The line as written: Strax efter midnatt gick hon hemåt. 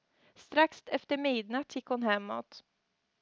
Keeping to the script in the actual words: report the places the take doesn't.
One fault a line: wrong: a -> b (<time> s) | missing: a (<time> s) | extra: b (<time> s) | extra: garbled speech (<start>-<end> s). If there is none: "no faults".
no faults